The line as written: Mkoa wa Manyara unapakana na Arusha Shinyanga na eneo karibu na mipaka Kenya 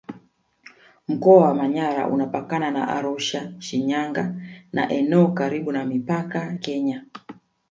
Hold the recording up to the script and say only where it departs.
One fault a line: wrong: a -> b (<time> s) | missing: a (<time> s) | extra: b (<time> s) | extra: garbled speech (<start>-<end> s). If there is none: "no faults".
no faults